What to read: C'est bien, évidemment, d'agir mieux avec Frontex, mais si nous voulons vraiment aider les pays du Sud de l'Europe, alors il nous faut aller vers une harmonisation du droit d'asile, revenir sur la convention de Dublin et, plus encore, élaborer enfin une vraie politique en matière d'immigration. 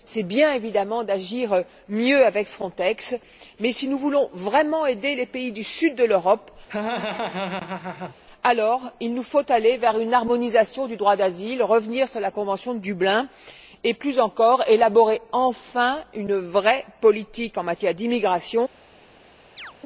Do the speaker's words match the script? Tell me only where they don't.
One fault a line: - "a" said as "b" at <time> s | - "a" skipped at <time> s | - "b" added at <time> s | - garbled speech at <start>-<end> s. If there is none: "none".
none